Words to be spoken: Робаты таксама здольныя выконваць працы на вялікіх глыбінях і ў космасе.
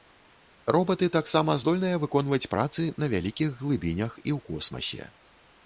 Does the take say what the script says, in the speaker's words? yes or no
yes